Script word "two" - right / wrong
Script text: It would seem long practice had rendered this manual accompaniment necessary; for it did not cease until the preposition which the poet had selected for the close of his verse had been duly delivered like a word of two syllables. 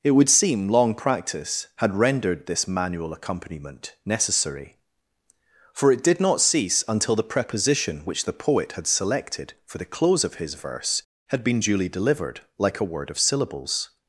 wrong